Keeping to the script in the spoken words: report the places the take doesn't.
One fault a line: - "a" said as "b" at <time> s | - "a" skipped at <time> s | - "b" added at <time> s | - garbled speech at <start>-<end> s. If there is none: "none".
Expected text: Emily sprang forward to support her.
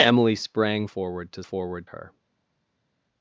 - "support" said as "forward" at 1.4 s